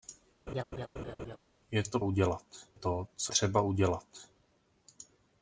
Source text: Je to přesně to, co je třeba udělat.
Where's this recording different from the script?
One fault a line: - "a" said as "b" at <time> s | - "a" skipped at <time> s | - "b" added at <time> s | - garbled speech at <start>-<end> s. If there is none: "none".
- "přesně" said as "udělat" at 2.0 s
- "je" skipped at 3.3 s